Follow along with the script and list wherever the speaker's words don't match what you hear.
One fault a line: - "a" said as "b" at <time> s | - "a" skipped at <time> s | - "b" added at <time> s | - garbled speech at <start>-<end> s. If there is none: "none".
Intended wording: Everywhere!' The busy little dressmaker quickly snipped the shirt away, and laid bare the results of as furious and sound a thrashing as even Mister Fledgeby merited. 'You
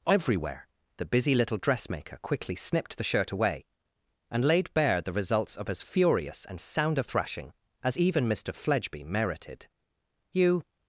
none